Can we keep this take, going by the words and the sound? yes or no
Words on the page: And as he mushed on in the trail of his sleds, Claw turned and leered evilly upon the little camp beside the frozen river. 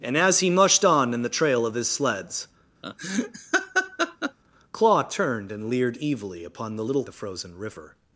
no